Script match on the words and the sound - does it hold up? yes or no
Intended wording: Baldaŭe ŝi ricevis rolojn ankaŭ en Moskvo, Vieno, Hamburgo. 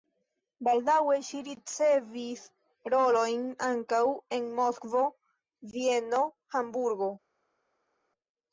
yes